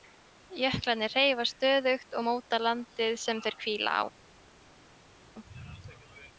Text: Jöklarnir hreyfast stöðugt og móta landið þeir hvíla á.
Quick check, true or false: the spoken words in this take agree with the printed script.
false